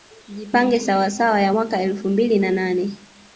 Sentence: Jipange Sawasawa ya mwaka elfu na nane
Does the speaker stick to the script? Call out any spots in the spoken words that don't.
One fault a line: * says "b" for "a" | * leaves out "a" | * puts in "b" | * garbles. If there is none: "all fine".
* puts in "mbili"